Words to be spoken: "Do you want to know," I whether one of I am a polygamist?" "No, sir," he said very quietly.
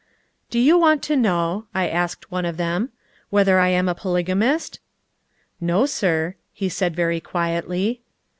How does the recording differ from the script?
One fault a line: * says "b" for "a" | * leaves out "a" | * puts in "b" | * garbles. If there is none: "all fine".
* says "asked" for "whether"
* puts in "them whether"